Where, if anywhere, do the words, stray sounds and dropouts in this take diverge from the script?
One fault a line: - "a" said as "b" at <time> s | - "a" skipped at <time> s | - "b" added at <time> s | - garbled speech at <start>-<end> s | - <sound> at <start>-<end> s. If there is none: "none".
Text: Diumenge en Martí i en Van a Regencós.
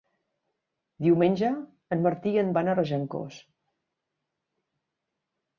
none